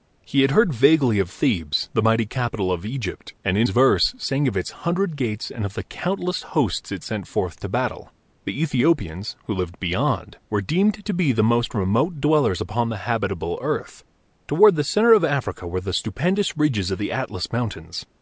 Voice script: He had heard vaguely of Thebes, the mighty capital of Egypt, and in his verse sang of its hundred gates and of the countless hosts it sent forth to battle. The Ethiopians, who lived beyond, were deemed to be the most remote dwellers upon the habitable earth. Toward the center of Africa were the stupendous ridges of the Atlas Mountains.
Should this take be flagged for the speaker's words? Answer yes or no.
yes